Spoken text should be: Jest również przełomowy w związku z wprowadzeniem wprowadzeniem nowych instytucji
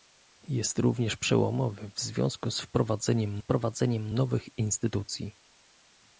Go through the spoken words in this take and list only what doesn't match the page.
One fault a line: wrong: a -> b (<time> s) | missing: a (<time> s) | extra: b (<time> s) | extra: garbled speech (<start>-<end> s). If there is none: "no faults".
no faults